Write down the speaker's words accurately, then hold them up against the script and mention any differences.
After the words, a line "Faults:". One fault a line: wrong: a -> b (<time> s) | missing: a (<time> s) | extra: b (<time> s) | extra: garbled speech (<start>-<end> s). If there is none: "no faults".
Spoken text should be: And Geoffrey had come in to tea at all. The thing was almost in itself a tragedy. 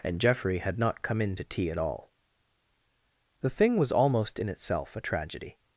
And Geoffrey had not come in to tea at all. The thing was almost in itself a tragedy.
Faults:
extra: not (0.8 s)